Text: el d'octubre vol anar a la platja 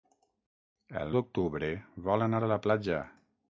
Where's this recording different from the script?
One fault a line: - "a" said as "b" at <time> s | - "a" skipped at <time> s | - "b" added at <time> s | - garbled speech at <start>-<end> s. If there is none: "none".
none